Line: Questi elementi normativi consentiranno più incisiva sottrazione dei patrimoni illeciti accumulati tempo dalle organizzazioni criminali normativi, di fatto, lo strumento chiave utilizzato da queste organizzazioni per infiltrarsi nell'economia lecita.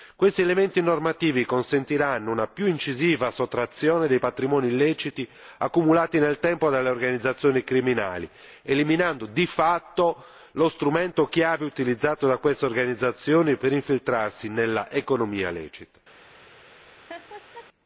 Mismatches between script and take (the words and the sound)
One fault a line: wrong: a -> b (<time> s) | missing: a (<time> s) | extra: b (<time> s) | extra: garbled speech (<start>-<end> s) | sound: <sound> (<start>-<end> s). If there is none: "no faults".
extra: una (2.3 s)
extra: nel (6.2 s)
wrong: normativi -> eliminando (8.6 s)
sound: laugh (17.1-17.7 s)